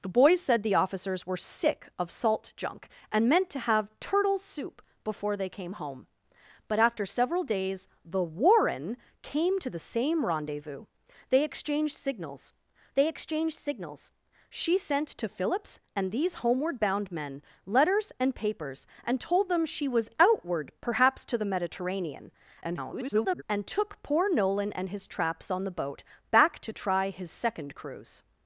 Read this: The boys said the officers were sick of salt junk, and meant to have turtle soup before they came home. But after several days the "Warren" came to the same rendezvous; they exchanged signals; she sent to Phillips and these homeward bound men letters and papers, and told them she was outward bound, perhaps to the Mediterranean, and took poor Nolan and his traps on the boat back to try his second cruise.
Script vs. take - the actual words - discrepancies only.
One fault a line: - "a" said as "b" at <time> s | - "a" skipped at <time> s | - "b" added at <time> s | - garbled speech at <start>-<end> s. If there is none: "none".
- "they exchanged signals" added at 12.9 s
- "bound" skipped at 20.7 s
- garbled speech at 22.6-23.4 s